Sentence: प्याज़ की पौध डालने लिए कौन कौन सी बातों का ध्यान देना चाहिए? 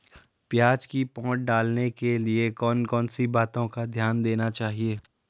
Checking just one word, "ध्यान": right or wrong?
right